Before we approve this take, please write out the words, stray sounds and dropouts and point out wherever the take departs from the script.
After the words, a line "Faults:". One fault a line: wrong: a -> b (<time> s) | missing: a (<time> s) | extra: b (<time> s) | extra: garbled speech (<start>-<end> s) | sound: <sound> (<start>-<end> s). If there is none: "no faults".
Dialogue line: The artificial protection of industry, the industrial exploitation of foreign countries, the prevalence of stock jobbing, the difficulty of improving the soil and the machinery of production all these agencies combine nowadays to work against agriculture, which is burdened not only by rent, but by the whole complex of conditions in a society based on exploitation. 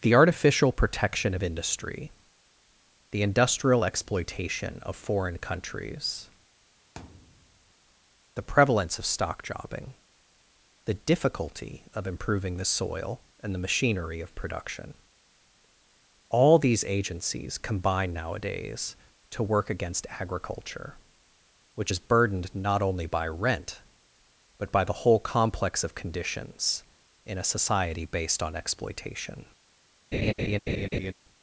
The artificial protection of industry, the industrial exploitation of foreign countries, the prevalence of stock jobbing, the difficulty of improving the soil and the machinery of production all these agencies combine nowadays to work against agriculture, which is burdened not only by rent, but by the whole complex of conditions in a society based on exploitation.
Faults:
sound: thud (7.0-7.7 s)
sound: laugh (30.1-31.1 s)